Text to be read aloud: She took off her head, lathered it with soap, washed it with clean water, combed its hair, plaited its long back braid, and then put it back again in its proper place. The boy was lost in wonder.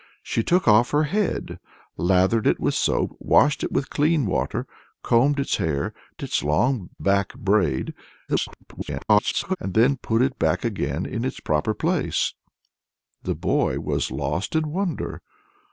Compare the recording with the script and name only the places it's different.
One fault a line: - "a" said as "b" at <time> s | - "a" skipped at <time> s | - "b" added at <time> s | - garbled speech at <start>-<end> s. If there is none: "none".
- "plaited" skipped at 5.9 s
- garbled speech at 8.3-9.6 s